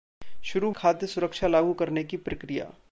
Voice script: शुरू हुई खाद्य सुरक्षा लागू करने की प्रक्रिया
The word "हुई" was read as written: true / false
false